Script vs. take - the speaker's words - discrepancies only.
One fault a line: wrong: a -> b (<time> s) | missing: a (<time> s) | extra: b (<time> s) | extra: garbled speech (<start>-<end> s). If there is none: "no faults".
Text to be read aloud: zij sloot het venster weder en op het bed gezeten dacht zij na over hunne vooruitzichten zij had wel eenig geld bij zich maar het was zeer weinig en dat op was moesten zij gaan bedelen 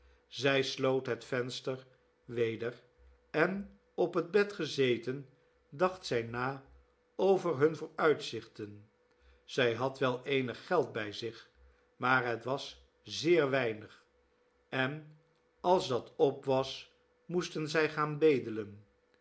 extra: als (15.6 s)